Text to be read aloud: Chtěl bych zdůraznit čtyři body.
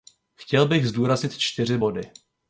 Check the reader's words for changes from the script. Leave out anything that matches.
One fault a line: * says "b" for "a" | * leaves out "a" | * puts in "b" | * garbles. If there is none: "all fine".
all fine